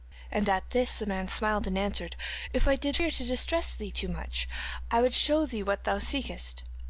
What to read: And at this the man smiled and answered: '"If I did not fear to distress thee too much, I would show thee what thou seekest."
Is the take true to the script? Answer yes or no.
no